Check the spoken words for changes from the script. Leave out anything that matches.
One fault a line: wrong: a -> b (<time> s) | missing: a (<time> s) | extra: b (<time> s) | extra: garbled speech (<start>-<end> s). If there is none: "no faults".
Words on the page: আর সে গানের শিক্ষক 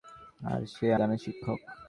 no faults